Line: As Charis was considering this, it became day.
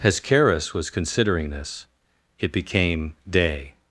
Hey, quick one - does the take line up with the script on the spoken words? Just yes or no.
yes